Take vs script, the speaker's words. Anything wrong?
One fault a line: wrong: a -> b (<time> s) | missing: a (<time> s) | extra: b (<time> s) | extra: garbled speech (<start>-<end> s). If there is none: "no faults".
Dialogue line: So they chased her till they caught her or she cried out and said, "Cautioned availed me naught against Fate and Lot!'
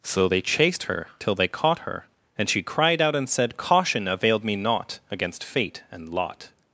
wrong: or -> and (2.4 s)
wrong: Cautioned -> Caution (3.6 s)